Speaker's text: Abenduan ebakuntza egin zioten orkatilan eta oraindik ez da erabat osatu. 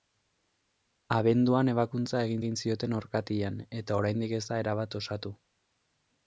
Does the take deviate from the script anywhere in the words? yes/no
yes